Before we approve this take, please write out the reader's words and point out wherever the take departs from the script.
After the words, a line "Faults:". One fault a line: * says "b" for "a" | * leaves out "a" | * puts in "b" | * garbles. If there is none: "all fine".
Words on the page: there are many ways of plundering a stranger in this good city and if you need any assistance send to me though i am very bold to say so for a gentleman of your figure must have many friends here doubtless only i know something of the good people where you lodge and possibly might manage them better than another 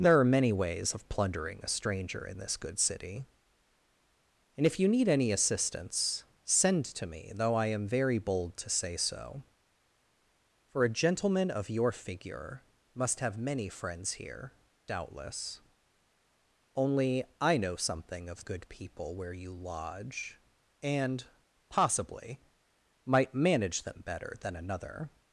there are many ways of plundering a stranger in this good city and if you need any assistance send to me though i am very bold to say so for a gentleman of your figure must have many friends here doubtless only i know something of good people where you lodge and possibly might manage them better than another
Faults:
* leaves out "the"